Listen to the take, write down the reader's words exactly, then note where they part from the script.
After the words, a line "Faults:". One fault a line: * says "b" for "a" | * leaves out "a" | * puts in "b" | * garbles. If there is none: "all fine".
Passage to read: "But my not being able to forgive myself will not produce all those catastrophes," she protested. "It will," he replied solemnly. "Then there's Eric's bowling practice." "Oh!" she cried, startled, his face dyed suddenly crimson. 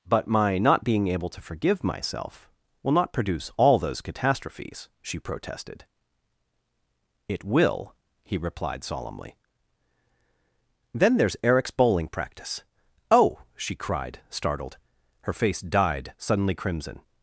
"But my not being able to forgive myself will not produce all those catastrophes," she protested. "It will," he replied solemnly. "Then there's Eric's bowling practice." "Oh!" she cried, startled, her face dyed suddenly crimson.
Faults:
* says "her" for "his"